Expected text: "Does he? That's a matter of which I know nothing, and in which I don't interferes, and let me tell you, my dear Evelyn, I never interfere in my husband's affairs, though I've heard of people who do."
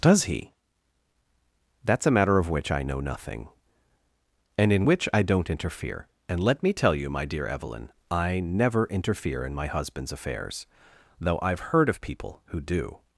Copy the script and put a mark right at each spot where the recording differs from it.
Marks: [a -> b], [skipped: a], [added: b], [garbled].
"Does he? That's a matter of which I know nothing, and in which I don't [interferes, -> interfere] and let me tell you, my dear Evelyn, I never interfere in my husband's affairs, though I've heard of people who do."